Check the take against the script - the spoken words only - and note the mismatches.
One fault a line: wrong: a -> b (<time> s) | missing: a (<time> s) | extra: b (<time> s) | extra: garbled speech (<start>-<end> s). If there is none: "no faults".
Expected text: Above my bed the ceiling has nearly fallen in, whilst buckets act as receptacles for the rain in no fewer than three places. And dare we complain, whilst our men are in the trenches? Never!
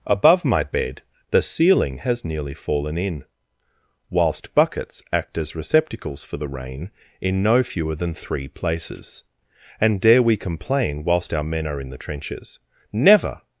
no faults